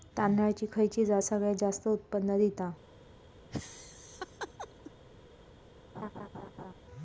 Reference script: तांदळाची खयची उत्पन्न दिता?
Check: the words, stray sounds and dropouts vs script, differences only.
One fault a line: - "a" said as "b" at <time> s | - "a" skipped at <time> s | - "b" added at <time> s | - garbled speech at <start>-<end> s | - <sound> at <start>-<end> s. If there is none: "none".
- "जात सगळयात जास्त" added at 1.1 s
- laugh at 3.5-4.9 s
- laugh at 5.9-6.7 s